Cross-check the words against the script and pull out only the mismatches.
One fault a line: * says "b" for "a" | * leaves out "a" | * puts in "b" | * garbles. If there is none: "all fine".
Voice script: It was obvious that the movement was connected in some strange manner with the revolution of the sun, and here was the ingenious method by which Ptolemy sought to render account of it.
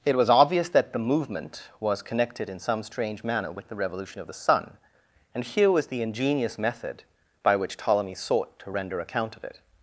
all fine